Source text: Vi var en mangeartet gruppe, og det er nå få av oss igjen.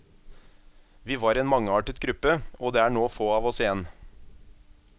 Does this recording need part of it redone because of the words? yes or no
no